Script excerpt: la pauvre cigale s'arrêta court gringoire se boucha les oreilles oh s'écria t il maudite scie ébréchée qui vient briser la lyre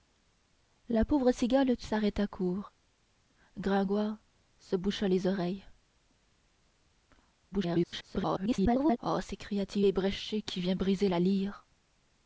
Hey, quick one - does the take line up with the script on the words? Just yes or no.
no